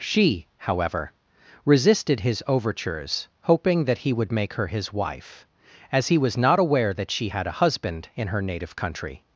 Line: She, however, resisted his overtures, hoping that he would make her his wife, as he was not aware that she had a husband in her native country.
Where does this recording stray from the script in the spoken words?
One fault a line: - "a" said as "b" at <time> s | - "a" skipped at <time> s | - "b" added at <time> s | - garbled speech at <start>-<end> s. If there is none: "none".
none